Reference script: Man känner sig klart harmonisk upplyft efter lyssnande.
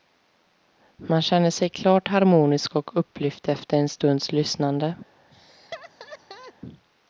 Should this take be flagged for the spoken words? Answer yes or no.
yes